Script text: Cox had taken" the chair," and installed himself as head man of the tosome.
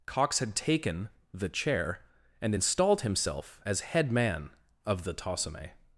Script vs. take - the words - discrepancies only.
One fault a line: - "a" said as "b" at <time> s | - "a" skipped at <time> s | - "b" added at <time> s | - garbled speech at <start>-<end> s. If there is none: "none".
none